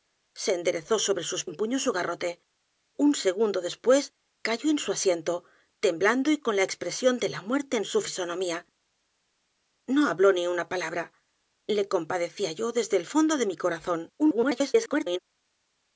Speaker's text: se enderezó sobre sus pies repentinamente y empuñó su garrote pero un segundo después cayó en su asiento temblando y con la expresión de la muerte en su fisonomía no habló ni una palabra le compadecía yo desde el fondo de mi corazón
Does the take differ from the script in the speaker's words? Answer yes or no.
yes